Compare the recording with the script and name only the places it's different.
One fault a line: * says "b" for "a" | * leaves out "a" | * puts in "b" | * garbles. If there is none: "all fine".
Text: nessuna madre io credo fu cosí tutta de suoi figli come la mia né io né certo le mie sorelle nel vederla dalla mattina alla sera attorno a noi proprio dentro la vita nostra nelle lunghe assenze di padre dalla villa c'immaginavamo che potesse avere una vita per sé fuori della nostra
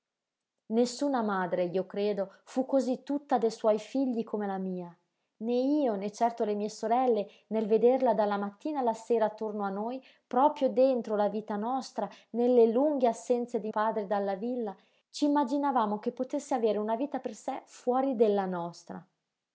all fine